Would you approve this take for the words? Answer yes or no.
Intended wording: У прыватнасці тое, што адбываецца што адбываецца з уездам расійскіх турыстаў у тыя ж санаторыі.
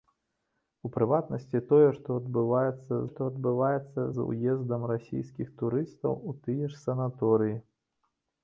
yes